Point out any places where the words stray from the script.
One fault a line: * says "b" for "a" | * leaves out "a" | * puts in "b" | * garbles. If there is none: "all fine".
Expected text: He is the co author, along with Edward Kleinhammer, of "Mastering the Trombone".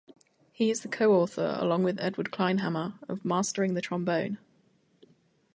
all fine